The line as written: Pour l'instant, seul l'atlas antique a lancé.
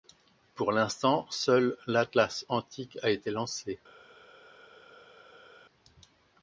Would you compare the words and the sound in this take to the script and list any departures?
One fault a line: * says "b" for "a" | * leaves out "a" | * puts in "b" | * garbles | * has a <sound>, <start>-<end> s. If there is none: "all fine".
* puts in "été"